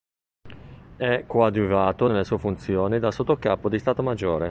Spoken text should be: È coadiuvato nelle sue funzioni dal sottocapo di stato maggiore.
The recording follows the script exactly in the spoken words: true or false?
true